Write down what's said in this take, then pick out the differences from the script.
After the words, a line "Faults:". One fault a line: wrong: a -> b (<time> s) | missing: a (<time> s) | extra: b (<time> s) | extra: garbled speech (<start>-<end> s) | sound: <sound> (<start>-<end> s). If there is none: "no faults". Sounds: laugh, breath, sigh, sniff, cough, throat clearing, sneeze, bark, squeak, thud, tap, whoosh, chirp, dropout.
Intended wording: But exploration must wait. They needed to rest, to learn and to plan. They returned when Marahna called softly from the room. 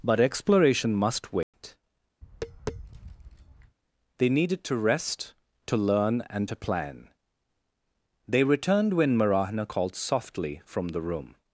But exploration must wait. They needed to rest, to learn and to plan. They returned when Marahna called softly from the room.
Faults:
sound: dropout (1.4-1.5 s)
sound: tap (2.2-3.8 s)